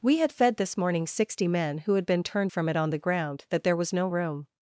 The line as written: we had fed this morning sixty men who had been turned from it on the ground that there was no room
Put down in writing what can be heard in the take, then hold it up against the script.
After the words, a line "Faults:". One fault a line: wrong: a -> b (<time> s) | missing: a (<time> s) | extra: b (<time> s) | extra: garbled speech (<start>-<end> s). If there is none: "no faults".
we had fed this morning sixty men who had been turned from it on the ground that there was no room
Faults:
no faults